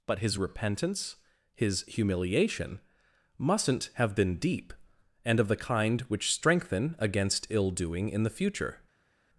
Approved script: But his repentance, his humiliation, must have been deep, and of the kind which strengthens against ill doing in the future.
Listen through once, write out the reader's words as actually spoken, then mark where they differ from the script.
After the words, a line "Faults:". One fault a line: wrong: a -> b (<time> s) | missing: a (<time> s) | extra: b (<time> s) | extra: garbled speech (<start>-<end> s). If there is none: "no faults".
But his repentance, his humiliation, mustn't have been deep, and of the kind which strengthen against ill doing in the future.
Faults:
wrong: must -> mustn't (3.4 s)
wrong: strengthens -> strengthen (6.3 s)